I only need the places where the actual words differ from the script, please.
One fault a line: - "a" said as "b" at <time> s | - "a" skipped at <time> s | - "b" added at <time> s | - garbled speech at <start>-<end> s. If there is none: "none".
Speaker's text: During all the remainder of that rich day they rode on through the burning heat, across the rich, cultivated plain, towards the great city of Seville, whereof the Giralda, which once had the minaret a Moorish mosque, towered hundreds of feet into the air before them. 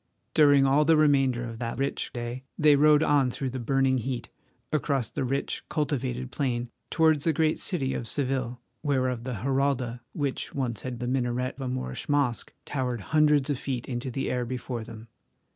none